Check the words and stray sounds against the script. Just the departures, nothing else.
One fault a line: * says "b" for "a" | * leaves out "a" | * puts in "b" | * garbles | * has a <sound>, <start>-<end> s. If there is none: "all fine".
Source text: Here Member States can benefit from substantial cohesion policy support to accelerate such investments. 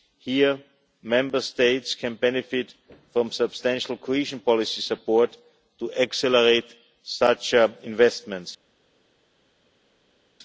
all fine